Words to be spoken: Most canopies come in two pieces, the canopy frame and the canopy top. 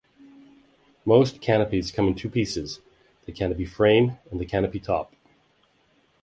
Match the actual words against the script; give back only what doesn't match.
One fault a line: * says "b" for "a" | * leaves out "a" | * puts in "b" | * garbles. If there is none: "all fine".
all fine